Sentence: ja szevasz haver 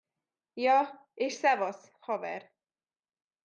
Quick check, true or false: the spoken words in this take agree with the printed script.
false